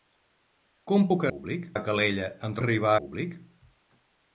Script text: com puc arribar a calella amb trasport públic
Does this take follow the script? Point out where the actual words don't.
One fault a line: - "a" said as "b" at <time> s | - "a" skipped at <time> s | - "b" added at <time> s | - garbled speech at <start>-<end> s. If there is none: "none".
- "arribar" said as "públic" at 1.3 s
- "trasport" said as "arribar" at 2.6 s